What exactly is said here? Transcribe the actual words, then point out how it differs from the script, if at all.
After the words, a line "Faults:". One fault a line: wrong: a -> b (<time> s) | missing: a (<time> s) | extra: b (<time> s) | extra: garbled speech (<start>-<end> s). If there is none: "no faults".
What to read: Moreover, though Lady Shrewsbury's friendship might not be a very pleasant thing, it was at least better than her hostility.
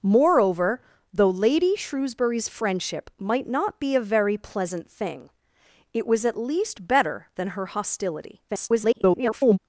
Moreover, though Lady Shrewsbury's friendship might not be a very pleasant thing, it was at least better than her hostility. [garbled]
Faults:
extra: garbled speech (8.5-9.6 s)